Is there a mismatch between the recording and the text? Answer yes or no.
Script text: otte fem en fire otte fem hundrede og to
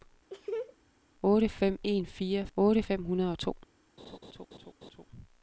no